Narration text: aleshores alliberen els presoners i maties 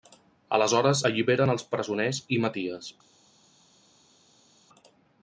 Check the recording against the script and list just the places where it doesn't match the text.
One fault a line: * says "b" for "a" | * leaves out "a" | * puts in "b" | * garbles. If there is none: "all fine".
all fine